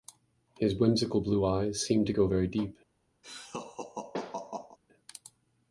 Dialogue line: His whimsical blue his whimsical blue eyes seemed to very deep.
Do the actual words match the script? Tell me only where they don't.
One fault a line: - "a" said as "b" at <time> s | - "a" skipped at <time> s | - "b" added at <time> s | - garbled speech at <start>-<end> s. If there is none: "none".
- "his whimsical blue" skipped at 1.4 s
- "go" added at 2.1 s